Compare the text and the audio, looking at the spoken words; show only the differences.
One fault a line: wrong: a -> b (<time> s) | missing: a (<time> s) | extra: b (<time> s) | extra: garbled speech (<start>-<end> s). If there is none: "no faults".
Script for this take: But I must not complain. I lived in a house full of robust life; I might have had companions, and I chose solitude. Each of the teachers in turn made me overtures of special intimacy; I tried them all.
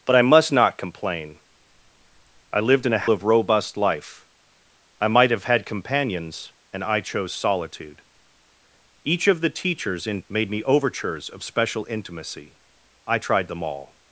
missing: house full (3.1 s)
missing: turn (10.2 s)